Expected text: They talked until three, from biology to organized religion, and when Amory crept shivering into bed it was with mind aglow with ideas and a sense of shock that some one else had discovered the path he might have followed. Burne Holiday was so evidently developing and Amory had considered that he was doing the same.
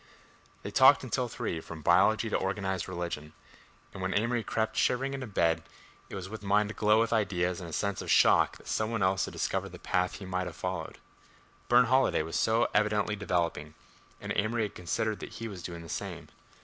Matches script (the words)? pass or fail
pass